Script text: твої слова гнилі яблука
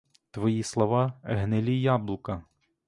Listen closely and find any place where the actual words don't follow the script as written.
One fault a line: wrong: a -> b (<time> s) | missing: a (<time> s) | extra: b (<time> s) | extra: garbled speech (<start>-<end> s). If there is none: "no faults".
no faults